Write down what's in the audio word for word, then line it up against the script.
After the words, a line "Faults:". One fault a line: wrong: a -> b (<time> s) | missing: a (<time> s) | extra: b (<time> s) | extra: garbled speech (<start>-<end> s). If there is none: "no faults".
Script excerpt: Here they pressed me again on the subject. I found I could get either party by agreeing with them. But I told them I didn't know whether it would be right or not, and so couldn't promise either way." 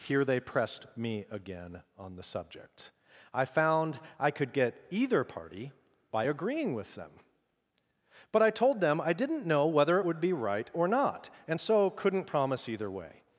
Here they pressed me again on the subject. I found I could get either party by agreeing with them. But I told them I didn't know whether it would be right or not, and so couldn't promise either way."
Faults:
no faults